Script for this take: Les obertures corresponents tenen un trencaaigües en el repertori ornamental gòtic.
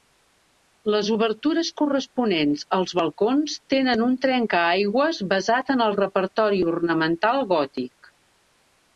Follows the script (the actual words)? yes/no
no